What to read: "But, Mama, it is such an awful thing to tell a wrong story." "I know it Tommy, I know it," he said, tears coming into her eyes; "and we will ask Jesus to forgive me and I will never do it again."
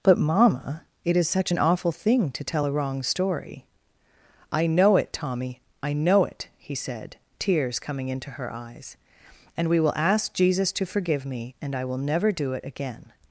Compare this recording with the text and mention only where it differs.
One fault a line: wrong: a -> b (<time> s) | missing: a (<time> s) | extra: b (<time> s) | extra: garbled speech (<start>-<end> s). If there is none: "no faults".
no faults